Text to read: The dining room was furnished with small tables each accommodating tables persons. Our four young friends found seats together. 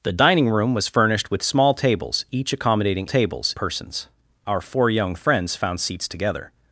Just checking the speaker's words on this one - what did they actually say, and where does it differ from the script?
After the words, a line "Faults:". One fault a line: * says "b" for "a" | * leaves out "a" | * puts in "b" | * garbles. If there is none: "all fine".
The dining room was furnished with small tables each accommodating tables persons. Our four young friends found seats together.
Faults:
all fine